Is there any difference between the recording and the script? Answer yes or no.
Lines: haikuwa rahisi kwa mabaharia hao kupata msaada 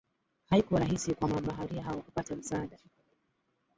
no